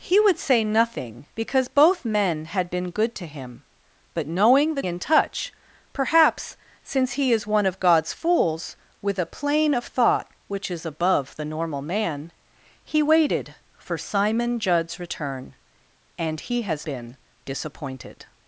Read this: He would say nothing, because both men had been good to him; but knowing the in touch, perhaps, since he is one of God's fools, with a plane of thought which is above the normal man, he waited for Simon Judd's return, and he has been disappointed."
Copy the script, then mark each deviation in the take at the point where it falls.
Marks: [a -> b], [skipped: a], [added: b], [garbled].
He would say nothing, because both men had been good to him; but knowing the in touch, perhaps, since he is one of God's fools, with a plane of thought which is above the normal man, he waited for Simon Judd's return, and he has been disappointed."